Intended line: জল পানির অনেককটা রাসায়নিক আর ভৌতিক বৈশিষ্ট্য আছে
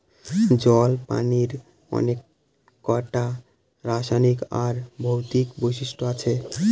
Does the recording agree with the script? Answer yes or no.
yes